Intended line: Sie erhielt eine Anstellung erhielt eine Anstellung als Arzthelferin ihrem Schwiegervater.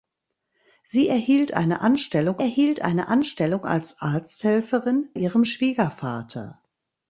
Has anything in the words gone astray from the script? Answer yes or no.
no